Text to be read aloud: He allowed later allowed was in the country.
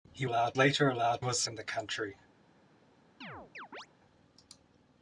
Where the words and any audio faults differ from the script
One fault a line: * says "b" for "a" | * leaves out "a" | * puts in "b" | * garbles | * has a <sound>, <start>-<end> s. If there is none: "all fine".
* has a chirp, 3.2-3.9 s